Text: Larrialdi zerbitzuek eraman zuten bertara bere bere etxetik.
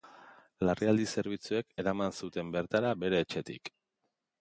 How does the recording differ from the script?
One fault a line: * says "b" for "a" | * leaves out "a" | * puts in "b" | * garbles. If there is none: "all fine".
* leaves out "bere"